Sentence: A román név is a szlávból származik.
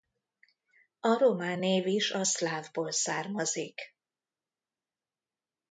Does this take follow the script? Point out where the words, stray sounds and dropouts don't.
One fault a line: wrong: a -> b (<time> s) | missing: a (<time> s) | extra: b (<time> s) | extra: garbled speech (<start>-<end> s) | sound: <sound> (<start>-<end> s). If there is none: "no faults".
no faults